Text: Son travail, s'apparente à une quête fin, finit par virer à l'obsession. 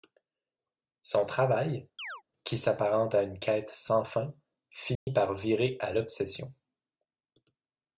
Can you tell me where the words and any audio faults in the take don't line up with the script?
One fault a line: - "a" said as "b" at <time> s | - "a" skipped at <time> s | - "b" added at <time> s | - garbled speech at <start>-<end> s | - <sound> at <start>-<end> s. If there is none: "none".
- chirp at 2.0-2.2 s
- "qui" added at 2.4 s
- "sans" added at 3.7 s
- dropout at 4.9-5.1 s